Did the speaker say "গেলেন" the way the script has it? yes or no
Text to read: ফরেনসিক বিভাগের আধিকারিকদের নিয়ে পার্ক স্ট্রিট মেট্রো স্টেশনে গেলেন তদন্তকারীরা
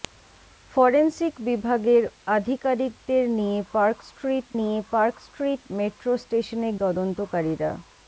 no